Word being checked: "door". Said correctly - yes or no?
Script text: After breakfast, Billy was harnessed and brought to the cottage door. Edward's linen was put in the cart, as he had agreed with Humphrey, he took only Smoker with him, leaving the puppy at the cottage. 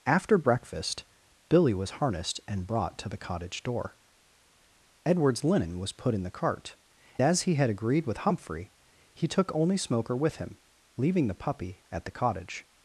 yes